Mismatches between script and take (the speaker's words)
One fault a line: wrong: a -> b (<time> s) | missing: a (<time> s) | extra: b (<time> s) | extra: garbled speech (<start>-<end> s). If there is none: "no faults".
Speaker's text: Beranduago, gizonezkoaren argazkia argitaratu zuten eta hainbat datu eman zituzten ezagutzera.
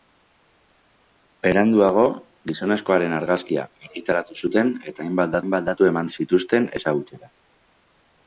extra: hainbat (5.4 s)